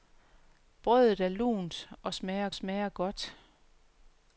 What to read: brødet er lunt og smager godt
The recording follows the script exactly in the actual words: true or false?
false